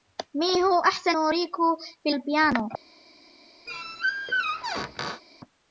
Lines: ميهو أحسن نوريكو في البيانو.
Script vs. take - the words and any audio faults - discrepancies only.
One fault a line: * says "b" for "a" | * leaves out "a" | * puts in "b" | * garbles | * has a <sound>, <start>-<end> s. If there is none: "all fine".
* has a squeak, 3.7-5.2 s